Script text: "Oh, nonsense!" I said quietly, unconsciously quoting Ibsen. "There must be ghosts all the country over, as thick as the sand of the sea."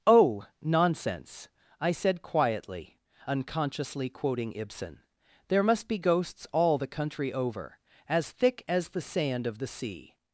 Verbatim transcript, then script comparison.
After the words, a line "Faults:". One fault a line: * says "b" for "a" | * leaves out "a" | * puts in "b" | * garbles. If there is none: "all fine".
"Oh, nonsense!" I said quietly, unconsciously quoting Ibsen. "There must be ghosts all the country over, as thick as the sand of the sea."
Faults:
all fine